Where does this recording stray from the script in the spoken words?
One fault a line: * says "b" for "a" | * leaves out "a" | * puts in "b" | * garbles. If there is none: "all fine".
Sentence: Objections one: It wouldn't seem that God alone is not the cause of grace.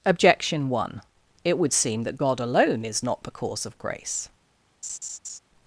* says "Objection" for "Objections"
* says "would" for "wouldn't"